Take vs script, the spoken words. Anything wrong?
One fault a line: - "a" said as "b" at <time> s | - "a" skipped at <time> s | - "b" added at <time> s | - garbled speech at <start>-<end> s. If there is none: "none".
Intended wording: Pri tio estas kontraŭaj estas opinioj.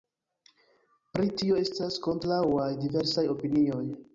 - "estas" said as "diversaj" at 2.9 s